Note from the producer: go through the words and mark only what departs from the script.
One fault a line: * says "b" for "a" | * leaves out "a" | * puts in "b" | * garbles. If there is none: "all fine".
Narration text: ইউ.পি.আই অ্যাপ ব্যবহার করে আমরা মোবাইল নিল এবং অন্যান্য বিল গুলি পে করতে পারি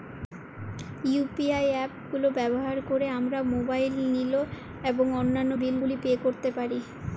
* puts in "গুলো"